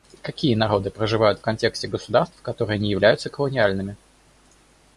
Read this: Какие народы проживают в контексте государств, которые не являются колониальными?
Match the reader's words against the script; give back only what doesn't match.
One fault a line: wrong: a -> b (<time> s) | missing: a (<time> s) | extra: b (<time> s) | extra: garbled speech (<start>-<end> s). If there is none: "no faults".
no faults